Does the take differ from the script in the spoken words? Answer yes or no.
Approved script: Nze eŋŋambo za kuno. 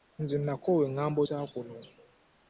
yes